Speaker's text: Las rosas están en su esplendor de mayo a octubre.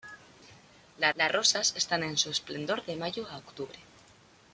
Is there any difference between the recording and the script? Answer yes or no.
yes